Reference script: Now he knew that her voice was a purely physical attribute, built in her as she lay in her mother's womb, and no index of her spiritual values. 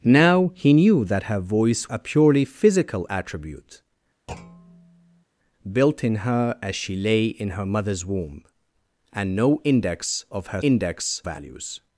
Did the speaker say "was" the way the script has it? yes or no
no